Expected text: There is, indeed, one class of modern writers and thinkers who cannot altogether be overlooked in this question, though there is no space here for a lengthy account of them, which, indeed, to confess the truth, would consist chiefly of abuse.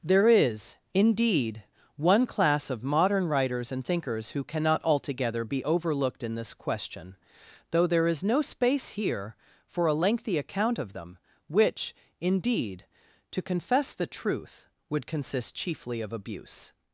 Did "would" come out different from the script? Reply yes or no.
no